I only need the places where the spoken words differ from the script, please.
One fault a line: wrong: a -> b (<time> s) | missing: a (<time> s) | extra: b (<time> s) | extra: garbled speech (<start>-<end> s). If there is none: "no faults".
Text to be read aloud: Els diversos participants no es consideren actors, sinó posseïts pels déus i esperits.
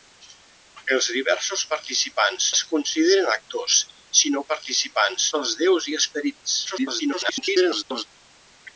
missing: no (2.5 s)
wrong: posseïts -> participants (4.5 s)
extra: garbled speech (6.6-8.0 s)